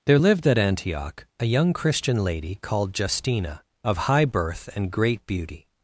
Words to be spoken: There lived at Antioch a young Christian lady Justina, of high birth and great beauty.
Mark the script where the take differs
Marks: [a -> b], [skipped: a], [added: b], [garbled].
There lived at Antioch a young Christian lady [added: called] Justina, of high birth and great beauty.